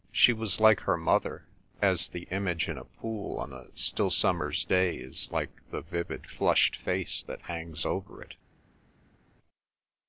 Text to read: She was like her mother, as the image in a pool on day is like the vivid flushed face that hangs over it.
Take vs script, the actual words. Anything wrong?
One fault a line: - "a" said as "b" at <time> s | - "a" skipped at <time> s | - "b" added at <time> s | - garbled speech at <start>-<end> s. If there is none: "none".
- "a still summer's" added at 3.5 s